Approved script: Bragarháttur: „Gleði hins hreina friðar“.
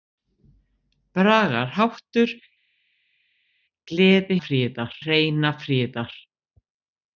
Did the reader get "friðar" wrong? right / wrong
right